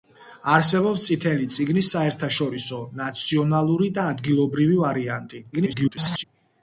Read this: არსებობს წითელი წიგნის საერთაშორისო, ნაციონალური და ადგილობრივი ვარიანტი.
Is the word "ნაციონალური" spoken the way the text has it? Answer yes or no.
yes